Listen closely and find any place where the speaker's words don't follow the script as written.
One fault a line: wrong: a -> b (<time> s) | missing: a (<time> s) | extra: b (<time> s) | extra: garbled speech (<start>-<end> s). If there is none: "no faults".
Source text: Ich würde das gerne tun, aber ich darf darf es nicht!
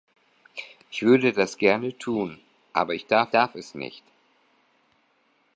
no faults